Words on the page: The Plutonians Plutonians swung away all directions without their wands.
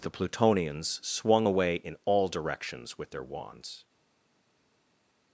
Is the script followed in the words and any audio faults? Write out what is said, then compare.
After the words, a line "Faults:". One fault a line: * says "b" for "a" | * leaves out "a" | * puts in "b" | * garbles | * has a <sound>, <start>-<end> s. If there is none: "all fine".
The Plutonians swung away in all directions with their wands.
Faults:
* leaves out "Plutonians"
* puts in "in"
* says "with" for "without"